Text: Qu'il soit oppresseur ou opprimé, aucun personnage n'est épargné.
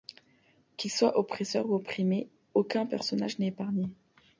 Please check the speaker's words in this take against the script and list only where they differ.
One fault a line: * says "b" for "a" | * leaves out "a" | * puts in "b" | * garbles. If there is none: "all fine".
all fine